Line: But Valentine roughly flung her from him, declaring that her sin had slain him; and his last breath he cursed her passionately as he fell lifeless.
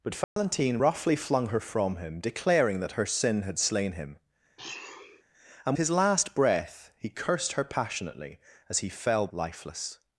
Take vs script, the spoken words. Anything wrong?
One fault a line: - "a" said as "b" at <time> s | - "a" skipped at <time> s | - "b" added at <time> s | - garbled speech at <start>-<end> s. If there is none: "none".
none